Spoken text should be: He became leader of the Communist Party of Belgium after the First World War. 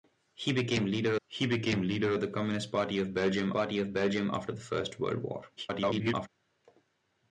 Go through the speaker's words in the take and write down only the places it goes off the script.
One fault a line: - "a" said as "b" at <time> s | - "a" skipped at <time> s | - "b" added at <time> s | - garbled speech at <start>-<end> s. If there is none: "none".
- "he became leader" added at 1.3 s
- "Party of Belgium" added at 3.5 s
- garbled speech at 5.6-6.3 s